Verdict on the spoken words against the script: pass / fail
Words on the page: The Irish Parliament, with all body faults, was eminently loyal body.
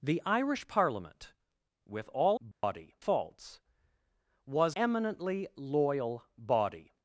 pass